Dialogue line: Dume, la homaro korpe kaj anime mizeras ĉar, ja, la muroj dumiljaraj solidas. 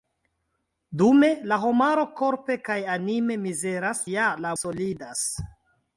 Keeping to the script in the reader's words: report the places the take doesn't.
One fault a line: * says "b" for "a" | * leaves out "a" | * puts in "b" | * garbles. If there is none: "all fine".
* leaves out "ĉar"
* leaves out "muroj dumiljaraj"